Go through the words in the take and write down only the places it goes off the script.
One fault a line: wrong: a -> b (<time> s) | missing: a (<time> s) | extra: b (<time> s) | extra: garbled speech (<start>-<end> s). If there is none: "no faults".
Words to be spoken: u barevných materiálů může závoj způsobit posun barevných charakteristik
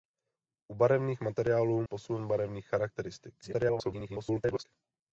missing: může závoj způsobit (1.8 s)
extra: garbled speech (3.4-4.6 s)